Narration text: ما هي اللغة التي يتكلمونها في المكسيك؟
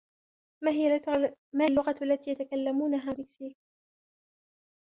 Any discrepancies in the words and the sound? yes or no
yes